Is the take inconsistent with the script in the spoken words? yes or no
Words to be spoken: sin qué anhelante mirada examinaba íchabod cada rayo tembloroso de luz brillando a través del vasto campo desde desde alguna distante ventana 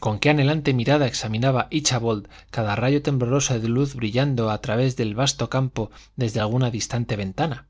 yes